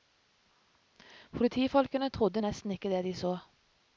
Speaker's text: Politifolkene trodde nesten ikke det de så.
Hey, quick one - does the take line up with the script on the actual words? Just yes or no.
yes